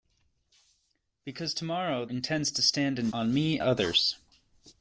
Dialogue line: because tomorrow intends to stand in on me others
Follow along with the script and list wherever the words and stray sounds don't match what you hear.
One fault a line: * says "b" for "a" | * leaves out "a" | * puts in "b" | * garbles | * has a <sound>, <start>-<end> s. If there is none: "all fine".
all fine